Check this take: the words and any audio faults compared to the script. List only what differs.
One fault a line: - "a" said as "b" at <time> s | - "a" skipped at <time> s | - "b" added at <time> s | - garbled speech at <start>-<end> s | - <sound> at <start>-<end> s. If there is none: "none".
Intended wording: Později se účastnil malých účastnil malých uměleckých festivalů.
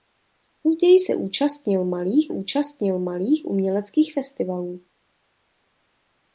none